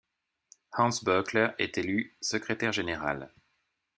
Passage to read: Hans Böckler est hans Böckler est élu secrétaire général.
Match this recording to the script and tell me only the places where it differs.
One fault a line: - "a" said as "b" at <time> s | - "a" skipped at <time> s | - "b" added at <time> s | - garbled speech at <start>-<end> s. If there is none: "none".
- "hans Böckler est" skipped at 1.8 s